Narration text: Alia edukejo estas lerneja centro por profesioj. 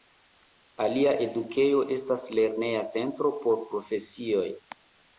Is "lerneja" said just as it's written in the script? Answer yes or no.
yes